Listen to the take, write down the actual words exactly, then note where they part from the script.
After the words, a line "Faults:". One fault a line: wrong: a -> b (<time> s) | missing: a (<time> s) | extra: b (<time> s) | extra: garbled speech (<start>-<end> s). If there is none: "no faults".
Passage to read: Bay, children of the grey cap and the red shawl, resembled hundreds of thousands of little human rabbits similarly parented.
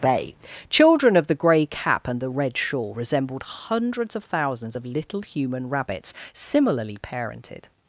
Bay, children of the grey cap and the red shawl, resembled hundreds of thousands of little human rabbits similarly parented.
Faults:
no faults